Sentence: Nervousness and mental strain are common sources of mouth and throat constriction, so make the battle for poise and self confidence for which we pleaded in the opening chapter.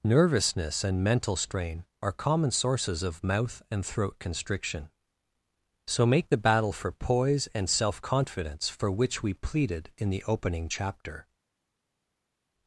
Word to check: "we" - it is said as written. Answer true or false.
true